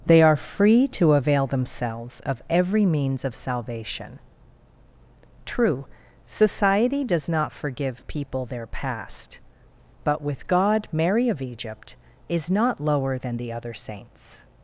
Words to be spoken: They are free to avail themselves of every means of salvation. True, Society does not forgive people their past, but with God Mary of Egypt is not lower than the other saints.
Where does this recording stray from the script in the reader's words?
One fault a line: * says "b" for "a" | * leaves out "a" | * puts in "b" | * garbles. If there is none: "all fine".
all fine